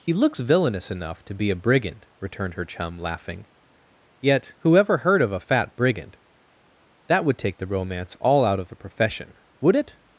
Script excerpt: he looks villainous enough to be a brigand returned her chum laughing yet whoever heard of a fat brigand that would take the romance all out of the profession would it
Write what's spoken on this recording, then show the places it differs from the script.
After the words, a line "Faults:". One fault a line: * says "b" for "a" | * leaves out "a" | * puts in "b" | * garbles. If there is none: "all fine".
he looks villainous enough to be a brigand returned her chum laughing yet whoever heard of a fat brigand that would take the romance all out of the profession would it
Faults:
all fine